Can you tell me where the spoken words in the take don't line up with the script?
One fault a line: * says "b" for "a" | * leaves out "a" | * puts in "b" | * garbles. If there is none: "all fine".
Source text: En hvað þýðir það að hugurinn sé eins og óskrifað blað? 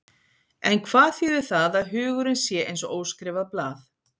all fine